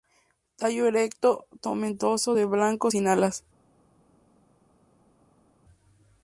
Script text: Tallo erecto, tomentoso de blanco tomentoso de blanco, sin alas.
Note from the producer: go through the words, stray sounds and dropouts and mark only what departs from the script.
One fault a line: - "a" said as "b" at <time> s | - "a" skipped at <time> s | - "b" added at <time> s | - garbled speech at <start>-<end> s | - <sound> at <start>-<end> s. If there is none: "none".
- "tomentoso de blanco" skipped at 2.9 s